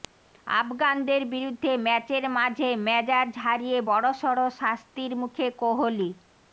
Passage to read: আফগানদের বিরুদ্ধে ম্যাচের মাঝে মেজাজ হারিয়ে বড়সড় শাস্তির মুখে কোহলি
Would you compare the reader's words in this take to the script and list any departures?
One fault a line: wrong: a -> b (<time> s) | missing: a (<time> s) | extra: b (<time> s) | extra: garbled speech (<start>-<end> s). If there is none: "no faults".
no faults